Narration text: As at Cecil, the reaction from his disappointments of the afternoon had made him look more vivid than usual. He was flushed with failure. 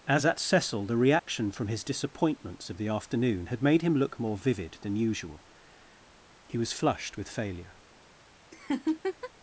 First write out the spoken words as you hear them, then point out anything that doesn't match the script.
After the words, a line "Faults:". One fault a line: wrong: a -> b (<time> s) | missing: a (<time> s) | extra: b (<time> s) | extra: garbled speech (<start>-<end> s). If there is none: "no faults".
As at Cecil, the reaction from his disappointments of the afternoon had made him look more vivid than usual. He was flushed with failure.
Faults:
no faults